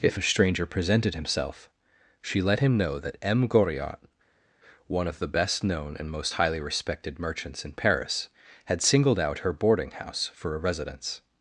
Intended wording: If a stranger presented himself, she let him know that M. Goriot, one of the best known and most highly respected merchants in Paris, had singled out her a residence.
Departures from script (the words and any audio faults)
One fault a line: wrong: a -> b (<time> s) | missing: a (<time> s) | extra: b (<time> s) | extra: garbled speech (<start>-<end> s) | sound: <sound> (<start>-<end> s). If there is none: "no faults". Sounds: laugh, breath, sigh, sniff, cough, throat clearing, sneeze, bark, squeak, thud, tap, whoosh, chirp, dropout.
extra: boarding house for (9.5 s)